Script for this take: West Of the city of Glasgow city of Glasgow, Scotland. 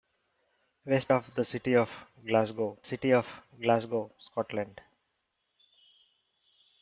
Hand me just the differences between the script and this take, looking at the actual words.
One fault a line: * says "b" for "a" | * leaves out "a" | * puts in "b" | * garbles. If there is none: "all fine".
all fine